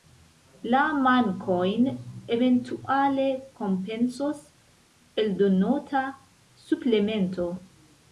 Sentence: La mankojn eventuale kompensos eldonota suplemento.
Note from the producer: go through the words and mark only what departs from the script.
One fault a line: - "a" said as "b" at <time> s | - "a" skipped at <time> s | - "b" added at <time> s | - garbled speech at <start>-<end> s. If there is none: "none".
none